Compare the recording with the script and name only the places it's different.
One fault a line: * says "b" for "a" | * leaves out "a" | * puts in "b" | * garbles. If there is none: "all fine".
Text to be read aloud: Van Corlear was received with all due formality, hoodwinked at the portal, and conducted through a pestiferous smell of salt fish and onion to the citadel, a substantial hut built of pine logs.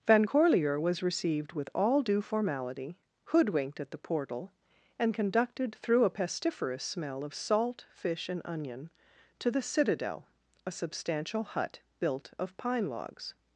all fine